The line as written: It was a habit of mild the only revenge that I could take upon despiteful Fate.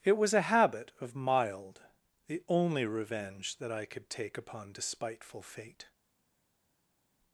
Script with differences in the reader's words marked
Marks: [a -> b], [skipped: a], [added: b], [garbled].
It was a habit of mild the only revenge that I could take upon despiteful Fate.